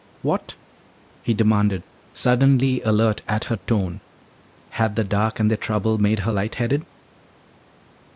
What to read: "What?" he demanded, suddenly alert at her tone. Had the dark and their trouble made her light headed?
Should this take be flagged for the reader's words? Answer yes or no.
no